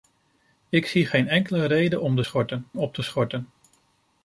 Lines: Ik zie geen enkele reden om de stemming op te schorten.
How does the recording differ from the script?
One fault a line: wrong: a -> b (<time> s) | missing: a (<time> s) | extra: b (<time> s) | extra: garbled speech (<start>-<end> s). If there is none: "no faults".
wrong: stemming -> schorten (2.2 s)